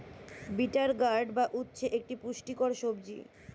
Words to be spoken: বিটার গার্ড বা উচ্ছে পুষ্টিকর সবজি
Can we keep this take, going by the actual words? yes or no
no